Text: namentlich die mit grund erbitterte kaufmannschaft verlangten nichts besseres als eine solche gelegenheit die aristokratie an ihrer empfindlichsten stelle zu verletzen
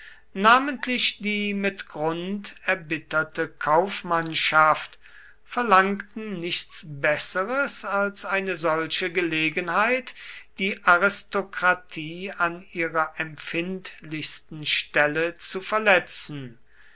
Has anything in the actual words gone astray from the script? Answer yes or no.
no